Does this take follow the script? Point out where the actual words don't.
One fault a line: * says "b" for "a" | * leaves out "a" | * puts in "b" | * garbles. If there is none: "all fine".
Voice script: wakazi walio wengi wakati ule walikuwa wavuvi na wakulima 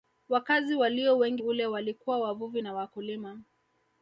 * leaves out "wakati"